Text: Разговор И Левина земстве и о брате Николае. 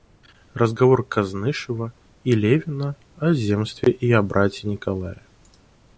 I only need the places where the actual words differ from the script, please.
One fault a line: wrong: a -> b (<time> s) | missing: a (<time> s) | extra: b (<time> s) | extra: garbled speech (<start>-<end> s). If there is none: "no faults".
extra: Кознышева (1.1 s)
extra: о (3.2 s)